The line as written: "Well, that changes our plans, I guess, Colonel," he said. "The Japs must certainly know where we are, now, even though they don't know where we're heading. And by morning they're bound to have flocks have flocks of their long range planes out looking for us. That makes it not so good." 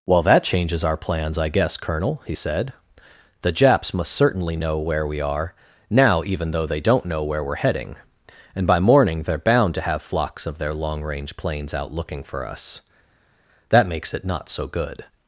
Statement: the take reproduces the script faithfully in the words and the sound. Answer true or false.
false